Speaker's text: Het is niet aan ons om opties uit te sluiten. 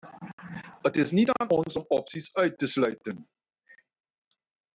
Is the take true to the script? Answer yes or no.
yes